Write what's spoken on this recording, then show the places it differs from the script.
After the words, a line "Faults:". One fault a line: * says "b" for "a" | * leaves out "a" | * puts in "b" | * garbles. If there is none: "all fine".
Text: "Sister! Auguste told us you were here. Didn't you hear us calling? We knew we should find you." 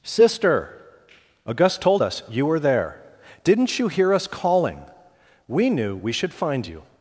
"Sister! Auguste told us you were there. Didn't you hear us calling? We knew we should find you."
Faults:
* says "there" for "here"